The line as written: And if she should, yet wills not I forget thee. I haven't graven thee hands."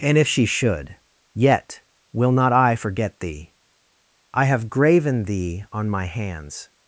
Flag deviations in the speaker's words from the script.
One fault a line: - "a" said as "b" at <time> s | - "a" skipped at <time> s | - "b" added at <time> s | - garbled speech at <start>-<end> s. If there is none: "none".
- "wills" said as "will" at 2.1 s
- "haven't" said as "have" at 4.5 s
- "on My" added at 5.7 s